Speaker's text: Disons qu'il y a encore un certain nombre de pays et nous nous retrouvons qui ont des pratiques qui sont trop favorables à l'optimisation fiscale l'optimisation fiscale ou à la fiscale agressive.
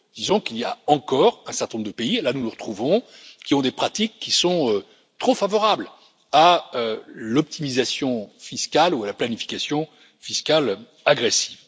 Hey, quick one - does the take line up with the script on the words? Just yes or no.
no